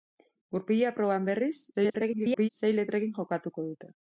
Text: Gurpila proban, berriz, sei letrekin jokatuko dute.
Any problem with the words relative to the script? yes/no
yes